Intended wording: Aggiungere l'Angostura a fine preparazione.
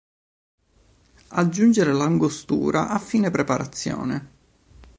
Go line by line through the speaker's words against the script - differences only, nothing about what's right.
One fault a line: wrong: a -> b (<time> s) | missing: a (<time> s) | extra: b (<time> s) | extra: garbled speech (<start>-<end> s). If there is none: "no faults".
no faults